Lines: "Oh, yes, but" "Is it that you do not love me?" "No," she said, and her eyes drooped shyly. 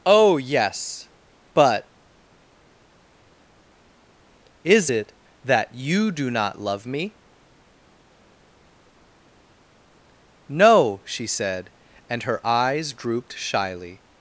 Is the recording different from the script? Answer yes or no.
no